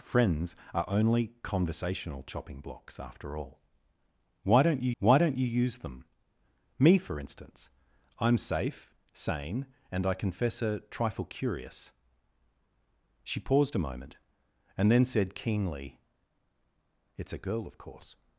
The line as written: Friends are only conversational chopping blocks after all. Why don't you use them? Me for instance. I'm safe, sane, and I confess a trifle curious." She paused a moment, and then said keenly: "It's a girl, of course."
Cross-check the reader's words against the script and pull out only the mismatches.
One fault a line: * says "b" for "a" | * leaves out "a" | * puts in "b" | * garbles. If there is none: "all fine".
* puts in "why don't you"